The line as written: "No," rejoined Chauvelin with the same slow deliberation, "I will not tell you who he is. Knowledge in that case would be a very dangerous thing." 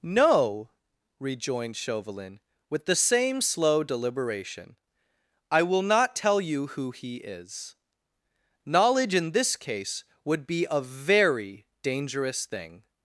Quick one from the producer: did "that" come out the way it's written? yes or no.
no